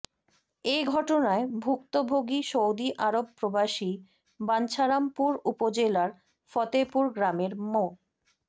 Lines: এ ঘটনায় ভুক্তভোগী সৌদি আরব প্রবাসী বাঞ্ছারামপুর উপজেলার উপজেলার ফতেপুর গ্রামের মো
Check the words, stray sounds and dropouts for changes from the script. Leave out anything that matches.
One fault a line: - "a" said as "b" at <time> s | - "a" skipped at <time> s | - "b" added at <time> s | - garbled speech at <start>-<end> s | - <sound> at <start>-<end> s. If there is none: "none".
- "উপজেলার" skipped at 6.1 s